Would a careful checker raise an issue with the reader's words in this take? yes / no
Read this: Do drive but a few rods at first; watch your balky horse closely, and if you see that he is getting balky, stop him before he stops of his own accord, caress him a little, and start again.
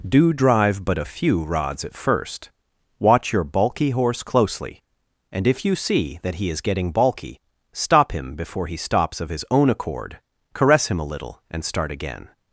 no